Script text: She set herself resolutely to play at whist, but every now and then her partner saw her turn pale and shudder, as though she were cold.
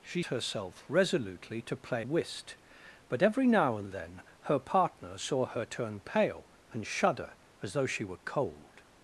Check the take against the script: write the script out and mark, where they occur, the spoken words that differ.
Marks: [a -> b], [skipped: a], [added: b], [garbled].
She [skipped: set] herself resolutely to play [skipped: at] whist, but every now and then her partner saw her turn pale and shudder, as though she were cold.